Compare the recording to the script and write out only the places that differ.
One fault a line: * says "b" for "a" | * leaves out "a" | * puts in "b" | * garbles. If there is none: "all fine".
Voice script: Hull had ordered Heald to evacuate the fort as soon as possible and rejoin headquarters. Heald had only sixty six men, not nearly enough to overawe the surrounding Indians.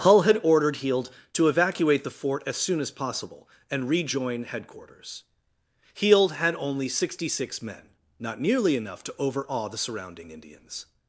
all fine